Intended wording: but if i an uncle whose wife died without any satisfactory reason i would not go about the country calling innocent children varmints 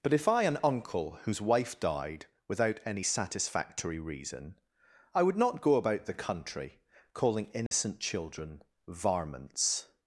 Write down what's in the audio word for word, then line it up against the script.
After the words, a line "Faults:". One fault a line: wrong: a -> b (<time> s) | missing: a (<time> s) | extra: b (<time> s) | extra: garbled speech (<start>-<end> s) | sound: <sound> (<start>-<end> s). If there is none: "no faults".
but if i an uncle whose wife died without any satisfactory reason i would not go about the country calling innocent children varmints
Faults:
sound: dropout (7.7-7.7 s)